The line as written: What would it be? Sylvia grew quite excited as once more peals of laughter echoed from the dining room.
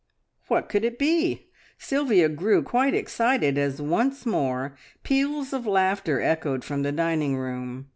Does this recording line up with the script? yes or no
no